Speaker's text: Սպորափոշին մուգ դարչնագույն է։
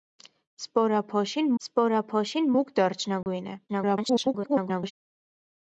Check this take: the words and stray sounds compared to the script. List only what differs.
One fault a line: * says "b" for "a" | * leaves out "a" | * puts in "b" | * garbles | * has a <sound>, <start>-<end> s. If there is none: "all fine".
* puts in "սպորափոշին"
* has a dropout, 3.2-3.3 s
* garbles